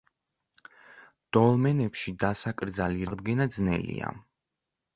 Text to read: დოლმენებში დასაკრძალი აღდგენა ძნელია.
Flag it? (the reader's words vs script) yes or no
no